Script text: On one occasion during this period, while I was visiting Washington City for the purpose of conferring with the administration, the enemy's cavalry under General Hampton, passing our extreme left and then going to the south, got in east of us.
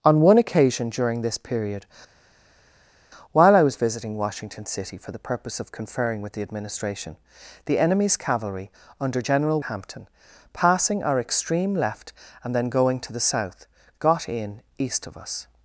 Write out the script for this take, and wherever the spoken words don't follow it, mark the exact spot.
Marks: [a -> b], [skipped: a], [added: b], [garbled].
On one occasion during this period, while I was visiting Washington City for the purpose of conferring with the administration, the enemy's cavalry under General Hampton, passing our extreme left and then going to the south, got in east of us.